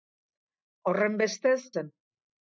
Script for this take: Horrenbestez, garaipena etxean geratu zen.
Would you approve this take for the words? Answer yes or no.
no